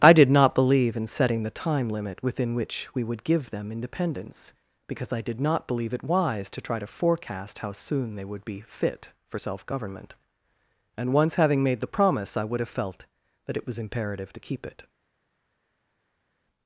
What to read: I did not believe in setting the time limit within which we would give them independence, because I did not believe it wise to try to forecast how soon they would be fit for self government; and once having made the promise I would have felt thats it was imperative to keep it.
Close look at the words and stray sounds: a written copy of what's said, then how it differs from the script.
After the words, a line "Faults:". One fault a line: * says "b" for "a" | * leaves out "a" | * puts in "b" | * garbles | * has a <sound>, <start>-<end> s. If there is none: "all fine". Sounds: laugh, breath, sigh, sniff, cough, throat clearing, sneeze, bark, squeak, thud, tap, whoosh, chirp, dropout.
I did not believe in setting the time limit within which we would give them independence, because I did not believe it wise to try to forecast how soon they would be fit for self government; and once having made the promise I would have felt that it was imperative to keep it.
Faults:
* says "that" for "thats"